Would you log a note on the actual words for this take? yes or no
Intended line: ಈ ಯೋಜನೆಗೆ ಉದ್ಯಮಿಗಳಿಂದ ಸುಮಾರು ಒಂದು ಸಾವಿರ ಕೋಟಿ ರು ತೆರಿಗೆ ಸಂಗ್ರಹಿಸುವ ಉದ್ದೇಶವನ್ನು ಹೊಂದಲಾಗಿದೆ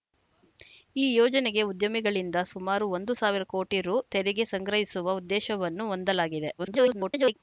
yes